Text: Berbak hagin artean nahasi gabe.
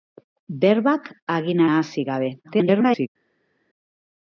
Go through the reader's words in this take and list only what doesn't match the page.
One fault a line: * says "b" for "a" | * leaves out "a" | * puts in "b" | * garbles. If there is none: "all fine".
* leaves out "artean"
* garbles